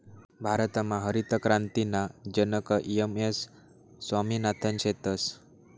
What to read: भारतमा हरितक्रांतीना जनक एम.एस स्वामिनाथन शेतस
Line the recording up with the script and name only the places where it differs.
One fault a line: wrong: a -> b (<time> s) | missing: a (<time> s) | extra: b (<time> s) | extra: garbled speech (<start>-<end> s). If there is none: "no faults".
no faults